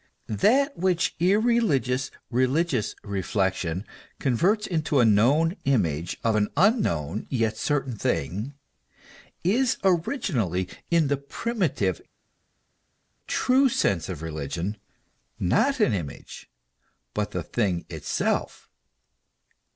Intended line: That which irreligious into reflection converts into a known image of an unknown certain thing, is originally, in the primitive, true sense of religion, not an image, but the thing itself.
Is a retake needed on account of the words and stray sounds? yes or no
yes